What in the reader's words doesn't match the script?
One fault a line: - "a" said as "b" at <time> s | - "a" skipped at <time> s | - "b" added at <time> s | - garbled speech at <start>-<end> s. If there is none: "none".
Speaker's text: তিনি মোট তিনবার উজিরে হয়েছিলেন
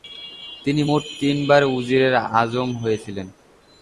- "আজম" added at 2.4 s